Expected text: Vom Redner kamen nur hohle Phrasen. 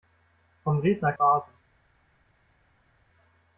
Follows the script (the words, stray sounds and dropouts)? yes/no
no